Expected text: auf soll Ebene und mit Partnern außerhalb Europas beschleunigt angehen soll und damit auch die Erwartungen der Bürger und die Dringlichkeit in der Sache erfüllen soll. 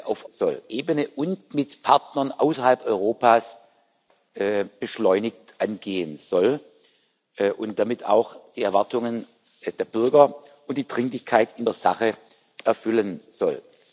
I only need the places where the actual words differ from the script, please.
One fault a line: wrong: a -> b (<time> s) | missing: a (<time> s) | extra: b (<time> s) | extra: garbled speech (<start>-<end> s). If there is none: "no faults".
no faults